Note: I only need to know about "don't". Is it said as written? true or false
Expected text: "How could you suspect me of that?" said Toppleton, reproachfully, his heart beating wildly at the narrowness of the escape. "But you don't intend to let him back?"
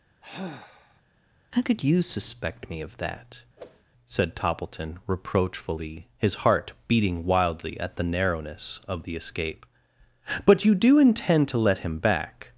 false